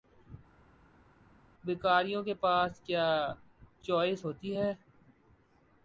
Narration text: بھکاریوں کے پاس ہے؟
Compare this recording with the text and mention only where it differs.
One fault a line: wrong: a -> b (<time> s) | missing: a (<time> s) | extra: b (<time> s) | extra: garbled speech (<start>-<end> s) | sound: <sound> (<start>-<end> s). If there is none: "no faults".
extra: کیا چوائس ہوتی (2.8 s)